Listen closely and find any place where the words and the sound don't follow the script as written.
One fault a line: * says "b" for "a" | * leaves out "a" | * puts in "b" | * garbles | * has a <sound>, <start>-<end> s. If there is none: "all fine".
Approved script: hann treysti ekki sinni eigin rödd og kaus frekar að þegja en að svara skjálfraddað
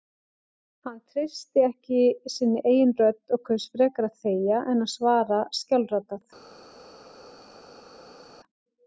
all fine